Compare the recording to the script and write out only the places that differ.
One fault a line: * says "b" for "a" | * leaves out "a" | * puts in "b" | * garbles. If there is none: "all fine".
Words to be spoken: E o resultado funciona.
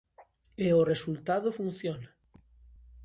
all fine